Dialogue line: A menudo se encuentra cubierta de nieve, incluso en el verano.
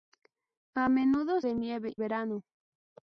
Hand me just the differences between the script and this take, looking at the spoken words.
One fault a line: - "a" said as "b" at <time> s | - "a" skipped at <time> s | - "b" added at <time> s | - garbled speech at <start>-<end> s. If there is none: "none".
- "se encuentra cubierta" skipped at 1.4 s
- "incluso en el" skipped at 2.0 s